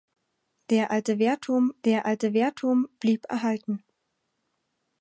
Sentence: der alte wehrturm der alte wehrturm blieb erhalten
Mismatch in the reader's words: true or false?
false